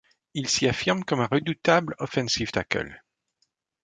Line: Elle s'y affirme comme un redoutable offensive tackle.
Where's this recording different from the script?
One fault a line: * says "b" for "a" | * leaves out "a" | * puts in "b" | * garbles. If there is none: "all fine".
* says "Il" for "Elle"